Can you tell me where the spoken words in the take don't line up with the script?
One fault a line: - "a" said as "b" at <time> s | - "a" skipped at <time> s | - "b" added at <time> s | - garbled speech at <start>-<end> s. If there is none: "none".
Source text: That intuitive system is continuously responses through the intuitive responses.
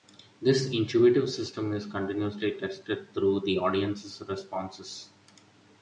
- "That" said as "This" at 0.4 s
- "responses" said as "tested" at 2.6 s
- "intuitive" said as "audience's" at 3.6 s